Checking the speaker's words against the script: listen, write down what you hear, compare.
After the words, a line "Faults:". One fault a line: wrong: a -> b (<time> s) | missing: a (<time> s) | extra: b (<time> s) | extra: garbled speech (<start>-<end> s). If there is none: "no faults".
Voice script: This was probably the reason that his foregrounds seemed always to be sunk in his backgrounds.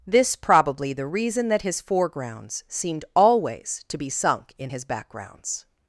This probably the reason that his foregrounds seemed always to be sunk in his backgrounds.
Faults:
missing: was (0.3 s)